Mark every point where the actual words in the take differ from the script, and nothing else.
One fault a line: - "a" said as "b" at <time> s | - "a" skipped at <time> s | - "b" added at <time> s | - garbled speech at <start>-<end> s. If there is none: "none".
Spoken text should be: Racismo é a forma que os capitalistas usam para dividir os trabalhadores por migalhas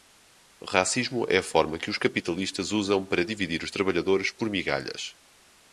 none